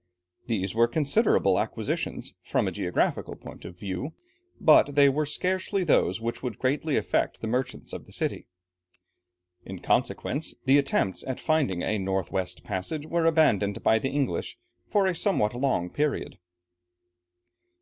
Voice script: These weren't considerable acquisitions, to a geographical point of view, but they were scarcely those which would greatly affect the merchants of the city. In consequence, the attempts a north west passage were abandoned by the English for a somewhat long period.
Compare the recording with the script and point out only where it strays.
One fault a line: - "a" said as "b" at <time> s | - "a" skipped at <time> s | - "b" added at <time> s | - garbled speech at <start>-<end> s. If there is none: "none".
- "weren't" said as "were" at 0.7 s
- "to" said as "from" at 2.4 s
- "at finding" added at 11.3 s